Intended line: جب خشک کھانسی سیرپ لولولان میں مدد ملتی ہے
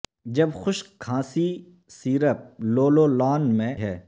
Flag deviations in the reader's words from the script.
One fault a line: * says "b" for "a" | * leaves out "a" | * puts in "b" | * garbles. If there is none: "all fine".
* leaves out "مدد ملتی"